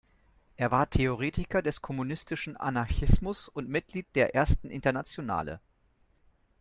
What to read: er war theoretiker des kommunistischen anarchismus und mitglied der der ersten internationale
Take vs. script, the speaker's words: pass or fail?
fail